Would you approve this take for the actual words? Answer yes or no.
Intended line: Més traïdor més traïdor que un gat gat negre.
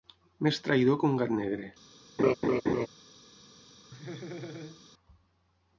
no